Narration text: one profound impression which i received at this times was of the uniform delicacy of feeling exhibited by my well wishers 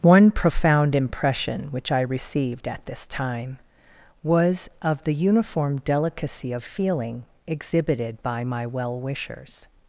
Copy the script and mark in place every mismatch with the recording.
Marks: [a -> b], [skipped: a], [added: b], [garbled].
one profound impression which i received at this [times -> time] was of the uniform delicacy of feeling exhibited by my well wishers